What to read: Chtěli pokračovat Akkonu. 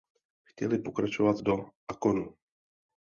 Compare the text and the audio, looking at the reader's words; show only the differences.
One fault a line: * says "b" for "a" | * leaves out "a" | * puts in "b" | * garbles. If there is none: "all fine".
* puts in "do"